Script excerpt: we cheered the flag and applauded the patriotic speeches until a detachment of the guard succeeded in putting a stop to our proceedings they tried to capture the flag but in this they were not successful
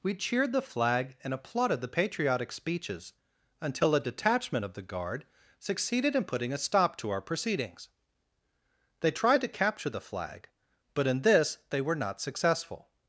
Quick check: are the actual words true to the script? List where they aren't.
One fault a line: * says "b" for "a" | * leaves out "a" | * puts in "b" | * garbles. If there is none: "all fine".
all fine